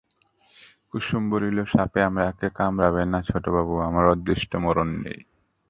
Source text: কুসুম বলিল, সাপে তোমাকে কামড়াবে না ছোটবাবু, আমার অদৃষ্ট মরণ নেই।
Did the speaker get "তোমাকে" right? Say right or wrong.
wrong